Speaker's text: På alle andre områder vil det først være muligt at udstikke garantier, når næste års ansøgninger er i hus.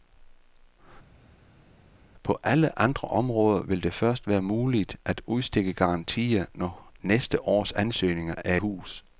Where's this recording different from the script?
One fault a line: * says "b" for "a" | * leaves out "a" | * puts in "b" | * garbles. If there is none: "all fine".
* leaves out "i"